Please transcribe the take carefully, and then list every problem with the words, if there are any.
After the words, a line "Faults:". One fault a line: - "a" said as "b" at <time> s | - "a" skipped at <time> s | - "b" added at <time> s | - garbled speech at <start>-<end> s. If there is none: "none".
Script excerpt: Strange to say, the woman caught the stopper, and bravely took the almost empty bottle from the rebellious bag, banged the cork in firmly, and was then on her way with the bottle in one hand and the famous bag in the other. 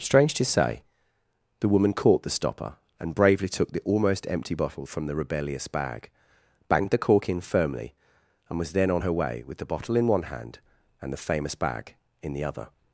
Strange to say, the woman caught the stopper, and bravely took the almost empty bottle from the rebellious bag, banged the cork in firmly, and was then on her way with the bottle in one hand and the famous bag in the other.
Faults:
none